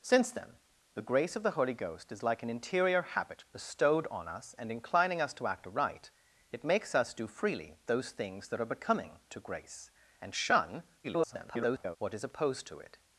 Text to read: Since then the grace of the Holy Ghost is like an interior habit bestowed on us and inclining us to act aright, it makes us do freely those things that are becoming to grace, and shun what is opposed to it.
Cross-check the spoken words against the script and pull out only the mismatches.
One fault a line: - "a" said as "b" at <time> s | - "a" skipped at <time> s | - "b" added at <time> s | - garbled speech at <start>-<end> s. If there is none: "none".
- garbled speech at 11.0-12.0 s